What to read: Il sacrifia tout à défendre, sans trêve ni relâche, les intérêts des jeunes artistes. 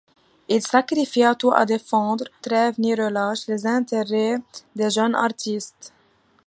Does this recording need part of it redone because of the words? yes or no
yes